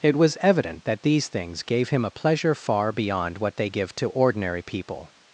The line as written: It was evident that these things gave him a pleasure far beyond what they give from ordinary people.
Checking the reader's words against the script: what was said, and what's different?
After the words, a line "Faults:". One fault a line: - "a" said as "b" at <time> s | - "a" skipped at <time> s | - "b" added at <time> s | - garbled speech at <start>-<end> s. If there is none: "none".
It was evident that these things gave him a pleasure far beyond what they give to ordinary people.
Faults:
- "from" said as "to" at 4.0 s